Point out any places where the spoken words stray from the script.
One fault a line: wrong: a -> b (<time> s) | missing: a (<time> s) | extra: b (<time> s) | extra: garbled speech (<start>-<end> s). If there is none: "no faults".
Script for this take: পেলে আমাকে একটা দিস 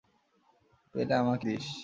missing: একটা (1.4 s)